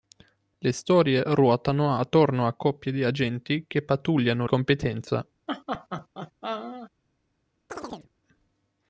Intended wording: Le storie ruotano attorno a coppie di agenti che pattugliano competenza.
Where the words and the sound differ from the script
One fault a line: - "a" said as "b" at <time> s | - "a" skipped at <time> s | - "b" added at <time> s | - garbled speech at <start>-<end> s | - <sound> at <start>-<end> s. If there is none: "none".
- laugh at 5.5-6.9 s
- chirp at 7.7-8.1 s